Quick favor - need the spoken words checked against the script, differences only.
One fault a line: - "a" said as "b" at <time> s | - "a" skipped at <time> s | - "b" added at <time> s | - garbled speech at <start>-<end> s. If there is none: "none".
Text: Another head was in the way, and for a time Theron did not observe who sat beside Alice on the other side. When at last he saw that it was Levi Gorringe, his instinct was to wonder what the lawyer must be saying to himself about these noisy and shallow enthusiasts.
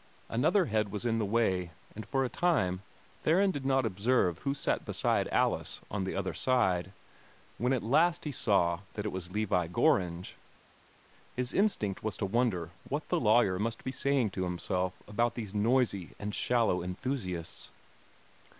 none